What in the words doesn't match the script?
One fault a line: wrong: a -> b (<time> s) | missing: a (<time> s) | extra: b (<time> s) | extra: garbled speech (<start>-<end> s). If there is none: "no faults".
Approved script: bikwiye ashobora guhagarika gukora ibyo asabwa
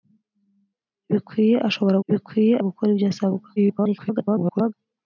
wrong: guhagarika -> bikwiye (2.1 s)
extra: garbled speech (3.6-4.7 s)